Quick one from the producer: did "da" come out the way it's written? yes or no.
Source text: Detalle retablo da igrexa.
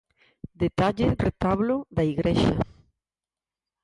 yes